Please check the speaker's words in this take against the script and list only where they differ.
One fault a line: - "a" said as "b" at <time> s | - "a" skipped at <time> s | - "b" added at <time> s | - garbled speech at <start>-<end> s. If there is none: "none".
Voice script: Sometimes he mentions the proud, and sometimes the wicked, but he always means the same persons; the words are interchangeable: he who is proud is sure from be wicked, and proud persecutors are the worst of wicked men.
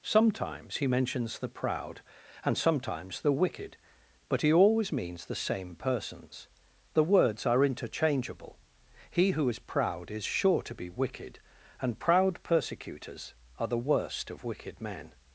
- "from" said as "to" at 10.6 s